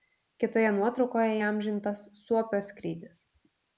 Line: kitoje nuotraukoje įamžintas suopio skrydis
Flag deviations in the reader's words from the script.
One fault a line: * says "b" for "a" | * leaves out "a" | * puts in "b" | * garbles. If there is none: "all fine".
all fine